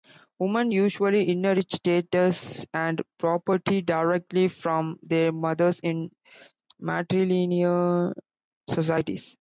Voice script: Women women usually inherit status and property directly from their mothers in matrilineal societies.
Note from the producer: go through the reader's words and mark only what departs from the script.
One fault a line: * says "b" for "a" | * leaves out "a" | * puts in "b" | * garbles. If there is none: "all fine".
* leaves out "women"